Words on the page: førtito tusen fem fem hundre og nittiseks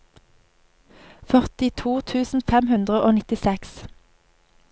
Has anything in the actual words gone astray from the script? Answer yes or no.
yes